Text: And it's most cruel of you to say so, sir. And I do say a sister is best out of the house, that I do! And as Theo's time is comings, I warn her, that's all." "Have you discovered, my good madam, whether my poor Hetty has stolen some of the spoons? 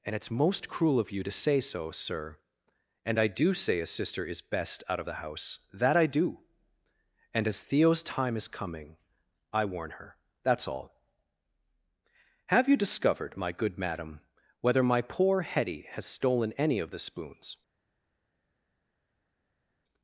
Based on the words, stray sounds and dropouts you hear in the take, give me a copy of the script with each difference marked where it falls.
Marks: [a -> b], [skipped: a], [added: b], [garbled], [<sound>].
And it's most cruel of you to say so, sir. And I do say a sister is best out of the house, that I do! And as Theo's time is [comings, -> coming] I warn her, that's all." "Have you discovered, my good madam, whether my poor Hetty has stolen [some -> any] of the spoons?